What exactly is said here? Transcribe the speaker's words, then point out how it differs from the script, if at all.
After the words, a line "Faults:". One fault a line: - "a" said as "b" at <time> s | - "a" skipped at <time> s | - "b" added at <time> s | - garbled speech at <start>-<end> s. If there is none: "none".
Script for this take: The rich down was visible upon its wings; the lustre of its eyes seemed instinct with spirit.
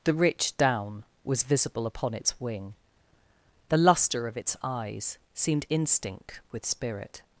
The rich down was visible upon its wing; the lustre of its eyes seemed instinct with spirit.
Faults:
- "wings" said as "wing" at 2.4 s